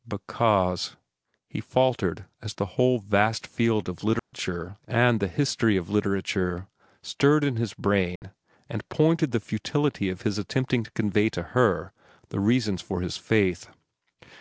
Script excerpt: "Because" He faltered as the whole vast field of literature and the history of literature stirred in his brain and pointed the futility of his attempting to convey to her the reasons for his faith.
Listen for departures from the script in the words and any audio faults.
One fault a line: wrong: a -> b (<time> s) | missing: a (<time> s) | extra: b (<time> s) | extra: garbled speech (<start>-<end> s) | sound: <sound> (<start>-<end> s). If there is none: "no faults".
sound: dropout (4.2-4.3 s)
sound: dropout (8.2-8.2 s)